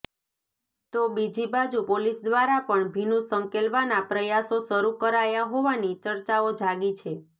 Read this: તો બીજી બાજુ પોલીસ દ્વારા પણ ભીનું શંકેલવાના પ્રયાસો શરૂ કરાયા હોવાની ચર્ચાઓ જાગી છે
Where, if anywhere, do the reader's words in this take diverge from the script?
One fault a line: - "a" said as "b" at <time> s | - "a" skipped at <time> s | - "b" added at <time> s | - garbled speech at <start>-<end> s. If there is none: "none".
none